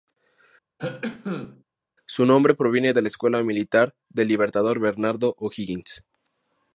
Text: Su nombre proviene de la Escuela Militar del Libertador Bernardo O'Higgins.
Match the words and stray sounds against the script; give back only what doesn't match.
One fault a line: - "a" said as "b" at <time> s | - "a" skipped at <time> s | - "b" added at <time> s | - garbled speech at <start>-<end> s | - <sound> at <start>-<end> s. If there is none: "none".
- cough at 0.8-1.6 s